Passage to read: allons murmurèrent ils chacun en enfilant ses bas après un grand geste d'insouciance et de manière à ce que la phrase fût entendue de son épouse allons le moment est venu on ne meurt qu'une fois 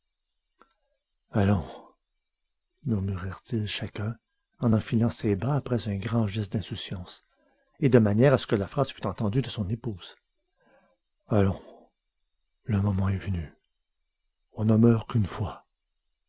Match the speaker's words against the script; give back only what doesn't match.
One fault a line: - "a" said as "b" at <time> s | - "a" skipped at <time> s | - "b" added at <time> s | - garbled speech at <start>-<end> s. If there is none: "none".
none